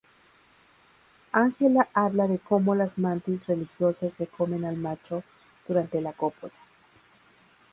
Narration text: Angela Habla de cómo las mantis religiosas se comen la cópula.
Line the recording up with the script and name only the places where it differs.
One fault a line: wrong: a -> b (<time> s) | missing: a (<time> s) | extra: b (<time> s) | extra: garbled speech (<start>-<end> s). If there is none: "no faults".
extra: al macho durante (4.6 s)